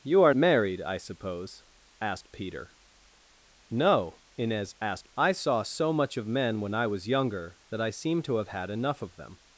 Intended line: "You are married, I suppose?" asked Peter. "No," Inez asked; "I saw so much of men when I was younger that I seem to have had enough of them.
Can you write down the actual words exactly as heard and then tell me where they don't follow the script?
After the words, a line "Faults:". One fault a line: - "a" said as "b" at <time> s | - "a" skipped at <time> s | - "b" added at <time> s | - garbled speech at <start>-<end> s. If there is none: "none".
"You are married, I suppose?" asked Peter. "No," Inez asked; "I saw so much of men when I was younger that I seem to have had enough of them.
Faults:
none